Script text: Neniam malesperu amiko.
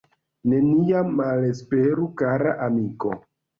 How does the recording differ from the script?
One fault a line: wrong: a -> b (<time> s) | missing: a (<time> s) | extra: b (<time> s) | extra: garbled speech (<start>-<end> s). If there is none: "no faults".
extra: kara (2.2 s)